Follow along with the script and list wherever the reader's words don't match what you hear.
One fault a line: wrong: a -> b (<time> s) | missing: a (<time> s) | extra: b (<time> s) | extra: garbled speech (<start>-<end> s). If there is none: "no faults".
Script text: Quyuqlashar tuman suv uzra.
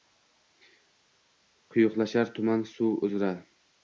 no faults